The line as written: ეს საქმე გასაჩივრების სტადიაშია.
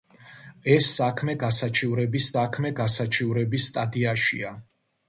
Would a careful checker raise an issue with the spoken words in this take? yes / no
yes